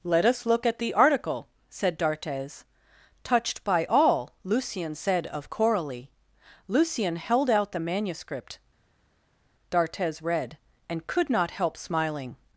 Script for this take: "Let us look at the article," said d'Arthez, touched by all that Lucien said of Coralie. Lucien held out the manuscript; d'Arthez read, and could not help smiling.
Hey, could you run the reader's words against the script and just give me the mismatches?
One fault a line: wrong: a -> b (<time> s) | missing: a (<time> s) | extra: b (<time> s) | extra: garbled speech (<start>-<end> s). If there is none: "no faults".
missing: that (4.3 s)